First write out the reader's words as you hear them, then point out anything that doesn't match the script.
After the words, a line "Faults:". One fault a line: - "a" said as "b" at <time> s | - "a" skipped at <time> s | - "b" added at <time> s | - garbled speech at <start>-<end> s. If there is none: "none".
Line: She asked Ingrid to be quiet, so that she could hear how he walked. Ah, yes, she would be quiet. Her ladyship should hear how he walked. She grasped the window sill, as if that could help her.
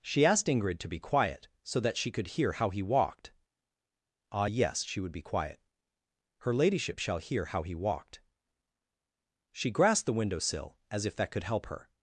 She asked Ingrid to be quiet, so that she could hear how he walked. Ah, yes, she would be quiet. Her ladyship shall hear how he walked. She grasped the window sill, as if that could help her.
Faults:
- "should" said as "shall" at 7.0 s